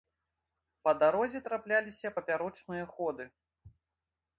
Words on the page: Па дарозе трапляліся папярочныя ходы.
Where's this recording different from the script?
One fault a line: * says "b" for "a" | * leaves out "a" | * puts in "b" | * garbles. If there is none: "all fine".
all fine